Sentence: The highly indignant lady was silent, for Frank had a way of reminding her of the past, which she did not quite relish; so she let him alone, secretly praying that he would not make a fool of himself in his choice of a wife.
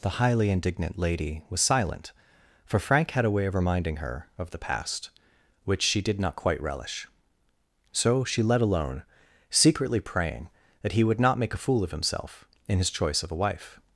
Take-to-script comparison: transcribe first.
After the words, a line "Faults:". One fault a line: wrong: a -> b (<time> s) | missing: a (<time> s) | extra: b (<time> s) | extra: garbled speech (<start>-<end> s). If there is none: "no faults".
The highly indignant lady was silent, for Frank had a way of reminding her of the past, which she did not quite relish; so she let alone, secretly praying that he would not make a fool of himself in his choice of a wife.
Faults:
missing: him (8.6 s)